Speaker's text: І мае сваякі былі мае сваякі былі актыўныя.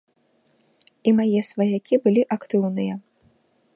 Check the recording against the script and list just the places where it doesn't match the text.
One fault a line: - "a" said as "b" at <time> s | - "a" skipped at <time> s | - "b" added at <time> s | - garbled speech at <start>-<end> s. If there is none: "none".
- "мае сваякі былі" skipped at 2.2 s